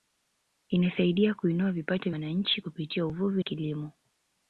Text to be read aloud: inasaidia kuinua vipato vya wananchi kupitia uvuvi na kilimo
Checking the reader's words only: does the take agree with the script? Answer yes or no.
no